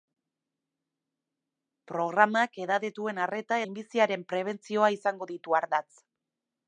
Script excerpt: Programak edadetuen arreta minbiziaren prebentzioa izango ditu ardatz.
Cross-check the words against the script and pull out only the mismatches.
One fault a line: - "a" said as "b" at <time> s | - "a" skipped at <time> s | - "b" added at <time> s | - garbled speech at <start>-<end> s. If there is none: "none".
none